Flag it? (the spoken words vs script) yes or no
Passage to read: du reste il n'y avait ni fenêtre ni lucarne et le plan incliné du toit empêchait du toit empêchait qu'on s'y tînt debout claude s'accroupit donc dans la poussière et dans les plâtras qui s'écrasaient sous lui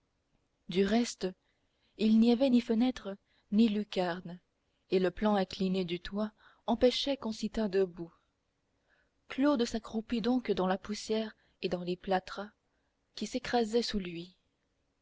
yes